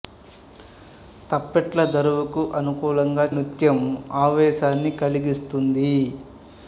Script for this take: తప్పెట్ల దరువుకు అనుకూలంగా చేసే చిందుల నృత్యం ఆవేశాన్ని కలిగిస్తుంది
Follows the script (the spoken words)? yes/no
no